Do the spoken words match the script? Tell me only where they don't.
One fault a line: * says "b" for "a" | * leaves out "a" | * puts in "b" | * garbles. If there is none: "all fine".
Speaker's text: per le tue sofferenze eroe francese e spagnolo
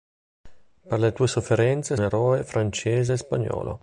all fine